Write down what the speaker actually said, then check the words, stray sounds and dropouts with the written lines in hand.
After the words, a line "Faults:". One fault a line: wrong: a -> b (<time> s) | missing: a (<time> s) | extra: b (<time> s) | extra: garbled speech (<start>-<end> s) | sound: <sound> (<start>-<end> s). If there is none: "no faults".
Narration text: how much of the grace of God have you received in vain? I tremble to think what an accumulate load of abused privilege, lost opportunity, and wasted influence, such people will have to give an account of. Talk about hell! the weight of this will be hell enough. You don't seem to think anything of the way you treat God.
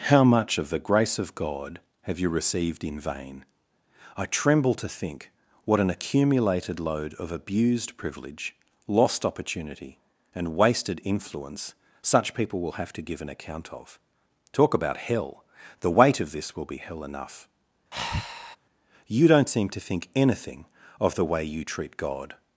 how much of the grace of God have you received in vain? I tremble to think what an accumulated load of abused privilege, lost opportunity, and wasted influence, such people will have to give an account of. Talk about hell! the weight of this will be hell enough. You don't seem to think anything of the way you treat God.
Faults:
wrong: accumulate -> accumulated (5.9 s)
sound: breath (17.9-18.6 s)